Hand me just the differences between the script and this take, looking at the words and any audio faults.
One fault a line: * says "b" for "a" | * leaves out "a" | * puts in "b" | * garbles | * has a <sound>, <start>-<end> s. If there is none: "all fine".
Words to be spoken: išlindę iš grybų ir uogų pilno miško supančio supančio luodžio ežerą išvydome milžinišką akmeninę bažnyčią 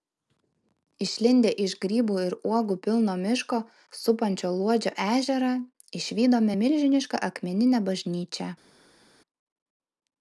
* leaves out "supančio"